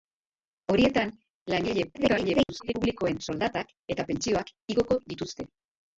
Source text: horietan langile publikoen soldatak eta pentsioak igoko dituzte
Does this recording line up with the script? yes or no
no